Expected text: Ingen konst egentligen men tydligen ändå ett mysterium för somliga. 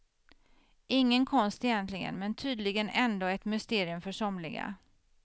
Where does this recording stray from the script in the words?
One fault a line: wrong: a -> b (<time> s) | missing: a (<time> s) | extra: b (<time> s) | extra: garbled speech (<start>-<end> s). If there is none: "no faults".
no faults